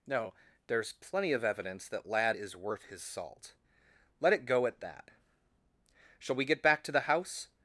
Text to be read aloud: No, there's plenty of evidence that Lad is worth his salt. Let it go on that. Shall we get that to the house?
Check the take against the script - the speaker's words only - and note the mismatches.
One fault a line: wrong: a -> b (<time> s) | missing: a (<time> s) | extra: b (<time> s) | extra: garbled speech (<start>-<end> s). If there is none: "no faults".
wrong: on -> at (4.7 s)
wrong: that -> back (6.6 s)